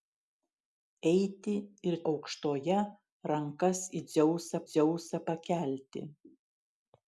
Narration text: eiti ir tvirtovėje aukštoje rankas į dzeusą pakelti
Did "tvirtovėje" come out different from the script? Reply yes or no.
yes